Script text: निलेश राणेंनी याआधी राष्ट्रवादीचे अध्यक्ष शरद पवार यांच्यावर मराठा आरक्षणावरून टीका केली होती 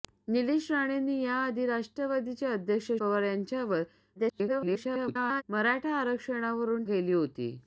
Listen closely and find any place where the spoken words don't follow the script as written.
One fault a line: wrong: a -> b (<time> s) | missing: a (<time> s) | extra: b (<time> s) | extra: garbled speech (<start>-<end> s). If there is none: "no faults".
missing: शरद (2.9 s)
extra: garbled speech (4.2-5.4 s)
missing: टीका (6.8 s)